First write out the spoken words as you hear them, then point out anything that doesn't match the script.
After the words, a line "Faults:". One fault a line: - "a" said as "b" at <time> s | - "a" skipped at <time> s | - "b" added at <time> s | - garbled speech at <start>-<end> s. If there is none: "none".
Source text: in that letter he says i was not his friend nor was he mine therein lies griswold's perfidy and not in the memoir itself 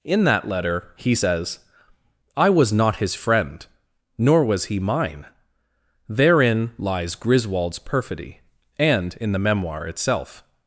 in that letter he says i was not his friend nor was he mine therein lies griswold's perfidy and in the memoir itself
Faults:
- "not" skipped at 9.2 s